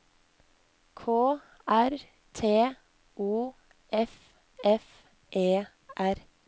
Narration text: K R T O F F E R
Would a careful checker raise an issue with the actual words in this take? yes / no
no